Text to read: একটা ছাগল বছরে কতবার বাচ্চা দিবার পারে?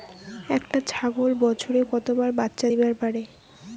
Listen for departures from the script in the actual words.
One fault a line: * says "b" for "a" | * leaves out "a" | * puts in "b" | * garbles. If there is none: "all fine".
all fine